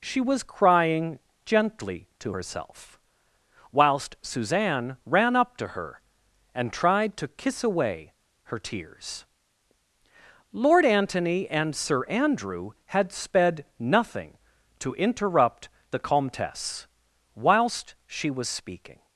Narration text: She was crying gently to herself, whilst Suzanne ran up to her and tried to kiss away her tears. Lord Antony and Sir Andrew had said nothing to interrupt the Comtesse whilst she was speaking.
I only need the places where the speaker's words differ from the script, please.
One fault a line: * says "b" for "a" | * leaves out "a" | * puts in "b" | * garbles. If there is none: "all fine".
* says "sped" for "said"